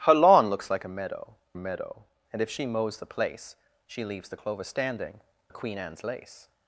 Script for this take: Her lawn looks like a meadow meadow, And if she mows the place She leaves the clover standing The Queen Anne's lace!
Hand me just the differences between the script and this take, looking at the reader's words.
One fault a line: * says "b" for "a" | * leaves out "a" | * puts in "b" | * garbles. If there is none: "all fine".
all fine